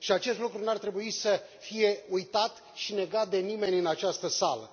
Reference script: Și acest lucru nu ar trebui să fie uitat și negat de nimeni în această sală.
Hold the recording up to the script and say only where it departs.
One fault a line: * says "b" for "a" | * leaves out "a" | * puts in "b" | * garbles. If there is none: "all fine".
all fine